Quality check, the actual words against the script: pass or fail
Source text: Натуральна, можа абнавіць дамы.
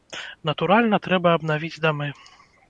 fail